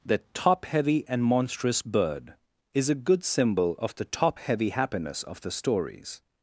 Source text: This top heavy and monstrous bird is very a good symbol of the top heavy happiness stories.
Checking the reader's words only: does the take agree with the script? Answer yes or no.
no